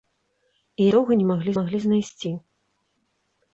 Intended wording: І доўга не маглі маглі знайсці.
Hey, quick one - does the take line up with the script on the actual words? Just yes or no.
yes